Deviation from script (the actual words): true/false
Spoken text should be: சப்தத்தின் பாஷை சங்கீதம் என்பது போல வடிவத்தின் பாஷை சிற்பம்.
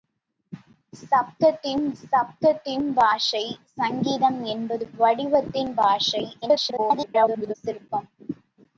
true